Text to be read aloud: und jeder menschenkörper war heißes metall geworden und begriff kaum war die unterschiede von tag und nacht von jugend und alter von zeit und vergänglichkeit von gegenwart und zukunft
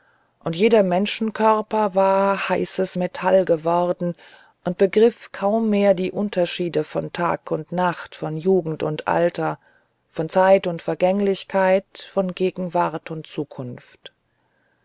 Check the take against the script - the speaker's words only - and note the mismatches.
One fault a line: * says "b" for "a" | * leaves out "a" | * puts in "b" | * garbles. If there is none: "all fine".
* says "mehr" for "war"